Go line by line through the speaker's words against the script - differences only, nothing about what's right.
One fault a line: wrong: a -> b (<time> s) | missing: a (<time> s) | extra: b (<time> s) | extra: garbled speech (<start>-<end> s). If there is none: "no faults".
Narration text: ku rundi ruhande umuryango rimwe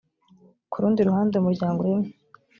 no faults